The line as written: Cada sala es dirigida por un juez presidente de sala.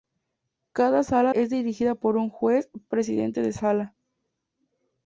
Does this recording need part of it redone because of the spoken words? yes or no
no